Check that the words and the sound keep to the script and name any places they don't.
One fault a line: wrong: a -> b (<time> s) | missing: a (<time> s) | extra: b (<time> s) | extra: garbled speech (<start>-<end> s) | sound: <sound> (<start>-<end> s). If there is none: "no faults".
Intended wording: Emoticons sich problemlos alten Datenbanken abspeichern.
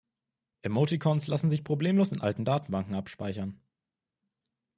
extra: lassen (1.3 s)
extra: in (2.1 s)